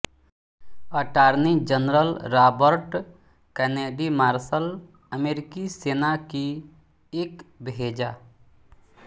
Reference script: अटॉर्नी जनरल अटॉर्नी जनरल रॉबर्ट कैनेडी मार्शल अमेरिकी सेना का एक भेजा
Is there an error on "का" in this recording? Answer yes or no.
yes